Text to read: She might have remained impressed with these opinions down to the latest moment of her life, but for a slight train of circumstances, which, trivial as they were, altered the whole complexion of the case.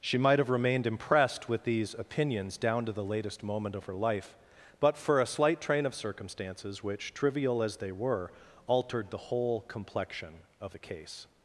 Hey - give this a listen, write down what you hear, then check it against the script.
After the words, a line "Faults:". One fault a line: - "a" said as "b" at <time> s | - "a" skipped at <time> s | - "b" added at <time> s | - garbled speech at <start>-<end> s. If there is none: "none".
She might have remained impressed with these opinions down to the latest moment of her life, but for a slight train of circumstances, which, trivial as they were, altered the whole complexion of the case.
Faults:
none